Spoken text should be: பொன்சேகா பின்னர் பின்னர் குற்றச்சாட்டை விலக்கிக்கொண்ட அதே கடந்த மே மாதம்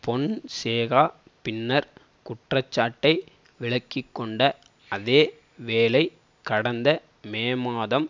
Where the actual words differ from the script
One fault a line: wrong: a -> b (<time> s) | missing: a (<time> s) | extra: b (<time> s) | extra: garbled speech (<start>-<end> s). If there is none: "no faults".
missing: பின்னர் (1.9 s)
extra: வேளை (5.6 s)